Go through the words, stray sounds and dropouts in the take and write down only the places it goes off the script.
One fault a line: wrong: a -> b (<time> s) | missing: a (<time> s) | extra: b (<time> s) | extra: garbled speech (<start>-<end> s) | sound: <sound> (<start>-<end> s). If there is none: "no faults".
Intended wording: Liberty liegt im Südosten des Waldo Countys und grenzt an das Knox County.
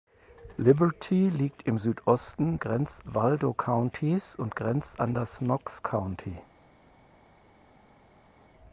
wrong: des -> grenzt (2.6 s)